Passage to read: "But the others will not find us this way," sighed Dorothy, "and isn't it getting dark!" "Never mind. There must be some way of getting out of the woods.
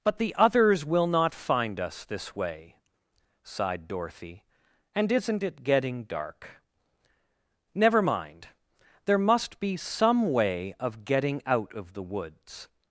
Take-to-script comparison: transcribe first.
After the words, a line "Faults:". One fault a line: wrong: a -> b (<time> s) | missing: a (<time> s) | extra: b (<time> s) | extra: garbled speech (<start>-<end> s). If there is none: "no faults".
"But the others will not find us this way," sighed Dorothy, "and isn't it getting dark!" "Never mind. There must be some way of getting out of the woods.
Faults:
no faults